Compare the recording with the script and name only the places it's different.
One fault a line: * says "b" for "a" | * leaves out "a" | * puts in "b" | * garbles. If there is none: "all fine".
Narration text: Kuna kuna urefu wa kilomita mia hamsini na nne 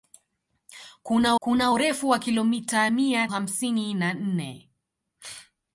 all fine